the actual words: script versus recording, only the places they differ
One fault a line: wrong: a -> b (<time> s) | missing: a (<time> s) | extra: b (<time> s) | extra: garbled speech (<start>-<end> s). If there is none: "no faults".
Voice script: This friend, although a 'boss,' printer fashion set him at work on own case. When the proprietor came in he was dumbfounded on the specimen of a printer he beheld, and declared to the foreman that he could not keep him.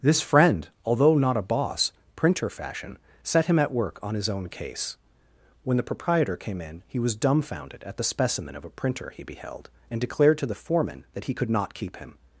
extra: not (1.2 s)
extra: his (4.2 s)
wrong: on -> at (7.8 s)